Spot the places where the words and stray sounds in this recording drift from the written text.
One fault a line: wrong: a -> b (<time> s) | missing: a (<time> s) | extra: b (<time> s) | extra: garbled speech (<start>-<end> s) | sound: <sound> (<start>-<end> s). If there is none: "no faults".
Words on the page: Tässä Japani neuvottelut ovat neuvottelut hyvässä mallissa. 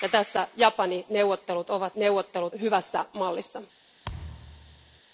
sound: thud (4.0-5.0 s)